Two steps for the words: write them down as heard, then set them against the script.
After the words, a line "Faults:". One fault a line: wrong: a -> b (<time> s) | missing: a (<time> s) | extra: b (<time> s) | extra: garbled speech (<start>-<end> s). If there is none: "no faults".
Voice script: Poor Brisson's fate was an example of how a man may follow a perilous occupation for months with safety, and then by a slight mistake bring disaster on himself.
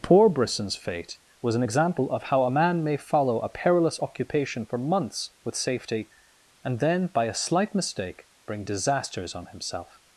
Poor Brisson's fate was an example of how a man may follow a perilous occupation for months with safety, and then by a slight mistake bring disasters on himself.
Faults:
wrong: disaster -> disasters (8.6 s)